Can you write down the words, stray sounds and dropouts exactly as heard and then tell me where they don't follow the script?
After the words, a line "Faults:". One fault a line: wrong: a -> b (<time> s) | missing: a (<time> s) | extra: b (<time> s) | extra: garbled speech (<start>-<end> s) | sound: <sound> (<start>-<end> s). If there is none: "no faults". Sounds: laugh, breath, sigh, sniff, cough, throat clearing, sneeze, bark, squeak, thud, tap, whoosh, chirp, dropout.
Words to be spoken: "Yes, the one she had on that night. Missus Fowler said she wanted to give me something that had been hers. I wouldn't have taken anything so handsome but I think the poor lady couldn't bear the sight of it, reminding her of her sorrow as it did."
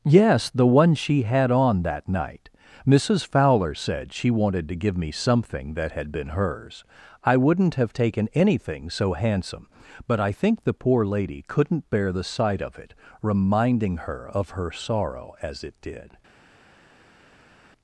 "Yes, the one she had on that night. Missus Fowler said she wanted to give me something that had been hers. I wouldn't have taken anything so handsome but I think the poor lady couldn't bear the sight of it, reminding her of her sorrow as it did."
Faults:
no faults